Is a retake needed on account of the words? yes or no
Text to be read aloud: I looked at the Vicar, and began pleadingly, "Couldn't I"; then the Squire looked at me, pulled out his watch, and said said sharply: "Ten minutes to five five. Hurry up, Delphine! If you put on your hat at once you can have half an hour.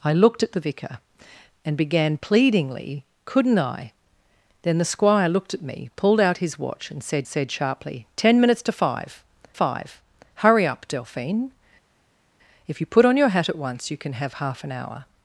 no